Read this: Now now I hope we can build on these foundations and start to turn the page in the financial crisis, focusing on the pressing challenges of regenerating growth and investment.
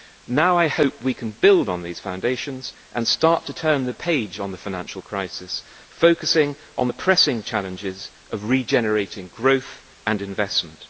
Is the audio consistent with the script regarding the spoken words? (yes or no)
no